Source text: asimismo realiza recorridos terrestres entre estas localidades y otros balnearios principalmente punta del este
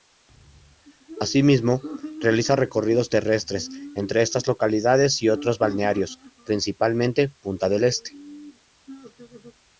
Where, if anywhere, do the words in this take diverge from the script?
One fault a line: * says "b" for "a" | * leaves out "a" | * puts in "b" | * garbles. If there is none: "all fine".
all fine